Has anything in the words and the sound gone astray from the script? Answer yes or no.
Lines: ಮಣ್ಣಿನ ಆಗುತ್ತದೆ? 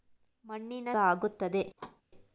yes